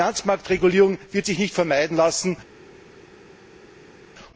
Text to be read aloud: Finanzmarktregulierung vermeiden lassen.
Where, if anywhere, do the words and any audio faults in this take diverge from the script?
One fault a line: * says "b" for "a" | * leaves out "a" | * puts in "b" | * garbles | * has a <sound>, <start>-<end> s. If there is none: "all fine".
* puts in "wird sich nicht"